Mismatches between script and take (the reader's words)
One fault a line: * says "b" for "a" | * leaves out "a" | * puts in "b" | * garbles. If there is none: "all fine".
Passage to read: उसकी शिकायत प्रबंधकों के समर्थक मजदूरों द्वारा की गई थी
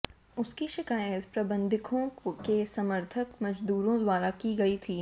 all fine